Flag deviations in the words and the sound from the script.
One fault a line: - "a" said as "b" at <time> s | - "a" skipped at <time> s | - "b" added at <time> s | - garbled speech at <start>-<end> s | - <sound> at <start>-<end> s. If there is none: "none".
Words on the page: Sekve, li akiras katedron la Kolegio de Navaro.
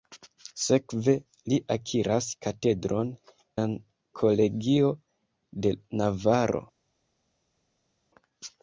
none